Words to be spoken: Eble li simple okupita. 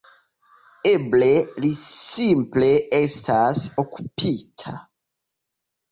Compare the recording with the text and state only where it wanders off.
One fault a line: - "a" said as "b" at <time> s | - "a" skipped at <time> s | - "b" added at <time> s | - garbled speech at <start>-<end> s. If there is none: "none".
- "estas" added at 3.0 s